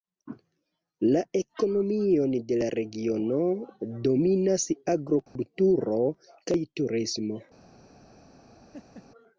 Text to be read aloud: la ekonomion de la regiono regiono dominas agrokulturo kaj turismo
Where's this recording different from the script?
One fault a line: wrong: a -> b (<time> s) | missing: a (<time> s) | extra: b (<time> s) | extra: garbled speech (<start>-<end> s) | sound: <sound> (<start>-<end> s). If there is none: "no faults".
missing: regiono (3.4 s)
sound: dropout (5.3-5.4 s)
sound: laugh (8.7-9.1 s)